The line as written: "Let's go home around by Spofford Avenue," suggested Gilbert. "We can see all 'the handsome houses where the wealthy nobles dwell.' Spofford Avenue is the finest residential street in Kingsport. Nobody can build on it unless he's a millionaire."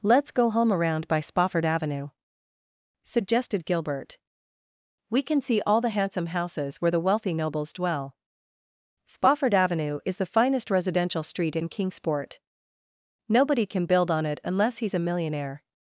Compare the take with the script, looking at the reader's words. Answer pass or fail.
pass